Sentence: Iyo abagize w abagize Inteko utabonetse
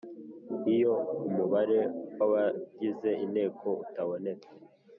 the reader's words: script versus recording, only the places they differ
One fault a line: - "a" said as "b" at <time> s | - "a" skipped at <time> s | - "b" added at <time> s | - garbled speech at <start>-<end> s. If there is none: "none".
- "abagize" said as "umubare" at 1.3 s